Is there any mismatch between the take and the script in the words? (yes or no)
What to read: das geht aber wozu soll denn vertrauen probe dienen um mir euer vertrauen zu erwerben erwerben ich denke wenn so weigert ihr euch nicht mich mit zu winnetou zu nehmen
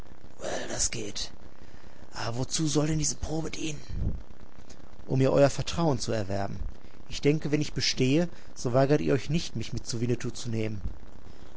yes